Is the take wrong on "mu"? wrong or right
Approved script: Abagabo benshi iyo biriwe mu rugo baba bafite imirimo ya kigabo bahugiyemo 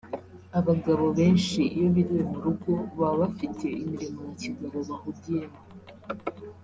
right